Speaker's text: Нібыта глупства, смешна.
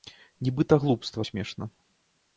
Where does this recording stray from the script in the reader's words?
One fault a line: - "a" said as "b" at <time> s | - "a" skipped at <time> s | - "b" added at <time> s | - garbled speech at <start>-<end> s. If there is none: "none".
none